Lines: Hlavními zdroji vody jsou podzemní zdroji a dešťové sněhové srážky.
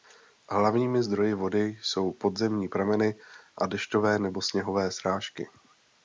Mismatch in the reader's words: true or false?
true